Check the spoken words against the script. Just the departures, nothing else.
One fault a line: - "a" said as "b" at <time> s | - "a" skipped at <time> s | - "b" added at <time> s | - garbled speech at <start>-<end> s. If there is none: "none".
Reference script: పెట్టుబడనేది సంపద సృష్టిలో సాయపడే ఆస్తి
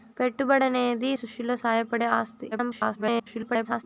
- "సంపద" skipped at 1.1 s
- garbled speech at 2.5-3.8 s